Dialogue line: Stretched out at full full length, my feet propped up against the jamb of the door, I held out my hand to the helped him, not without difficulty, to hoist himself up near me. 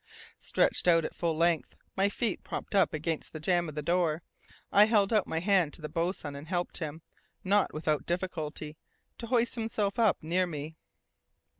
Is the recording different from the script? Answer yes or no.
yes